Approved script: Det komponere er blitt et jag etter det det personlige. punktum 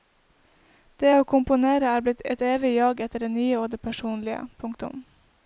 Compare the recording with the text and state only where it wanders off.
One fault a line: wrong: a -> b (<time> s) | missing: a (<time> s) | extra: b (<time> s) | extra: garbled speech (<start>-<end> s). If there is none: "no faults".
extra: å (1.1 s)
extra: evig (2.5 s)
extra: nye og (3.3 s)